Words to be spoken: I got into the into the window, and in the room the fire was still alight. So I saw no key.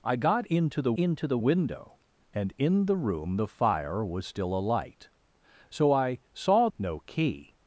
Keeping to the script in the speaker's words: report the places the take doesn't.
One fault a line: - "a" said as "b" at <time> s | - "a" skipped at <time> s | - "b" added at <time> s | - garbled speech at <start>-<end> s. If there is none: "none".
none